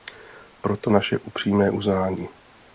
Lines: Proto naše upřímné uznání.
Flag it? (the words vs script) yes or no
no